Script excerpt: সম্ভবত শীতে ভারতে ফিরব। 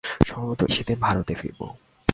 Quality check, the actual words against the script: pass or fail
pass